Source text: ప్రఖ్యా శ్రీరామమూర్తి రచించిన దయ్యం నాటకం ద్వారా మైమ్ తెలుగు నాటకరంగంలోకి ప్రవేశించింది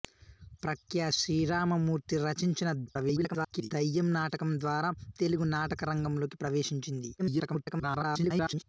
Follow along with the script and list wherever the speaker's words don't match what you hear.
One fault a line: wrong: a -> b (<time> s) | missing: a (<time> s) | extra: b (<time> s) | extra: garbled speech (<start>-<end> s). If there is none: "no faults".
extra: garbled speech (2.9-3.7 s)
missing: మైమ్ (4.9 s)
extra: garbled speech (7.2-8.6 s)